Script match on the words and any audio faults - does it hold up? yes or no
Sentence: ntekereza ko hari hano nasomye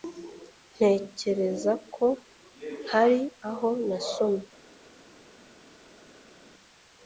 no